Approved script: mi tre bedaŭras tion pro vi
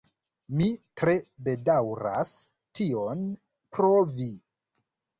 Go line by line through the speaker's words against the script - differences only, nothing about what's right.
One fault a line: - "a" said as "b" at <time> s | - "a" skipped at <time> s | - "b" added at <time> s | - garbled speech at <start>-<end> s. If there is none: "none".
none